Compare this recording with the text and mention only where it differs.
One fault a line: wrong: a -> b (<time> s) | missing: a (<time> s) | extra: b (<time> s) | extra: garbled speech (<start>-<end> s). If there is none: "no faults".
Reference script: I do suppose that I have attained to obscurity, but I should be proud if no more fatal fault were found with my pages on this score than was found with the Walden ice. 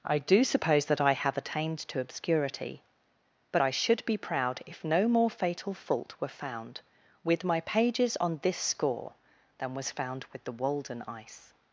no faults